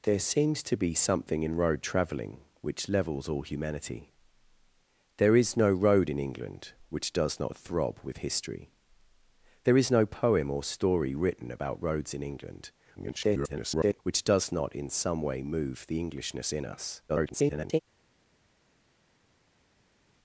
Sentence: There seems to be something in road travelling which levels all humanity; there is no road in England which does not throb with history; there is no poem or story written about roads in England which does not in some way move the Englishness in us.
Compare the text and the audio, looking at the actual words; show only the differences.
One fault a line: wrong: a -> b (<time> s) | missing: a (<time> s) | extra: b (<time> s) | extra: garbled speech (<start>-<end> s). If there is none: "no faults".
extra: garbled speech (12.9-14.0 s)
extra: garbled speech (17.1-17.8 s)